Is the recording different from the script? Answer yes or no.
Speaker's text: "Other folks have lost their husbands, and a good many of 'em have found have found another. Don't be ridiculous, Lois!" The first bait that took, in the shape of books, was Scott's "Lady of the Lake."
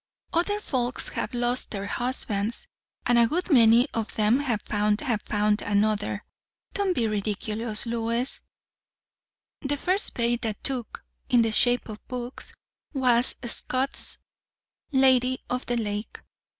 no